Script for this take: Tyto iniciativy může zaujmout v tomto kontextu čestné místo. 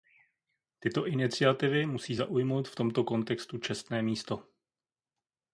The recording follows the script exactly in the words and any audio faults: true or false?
false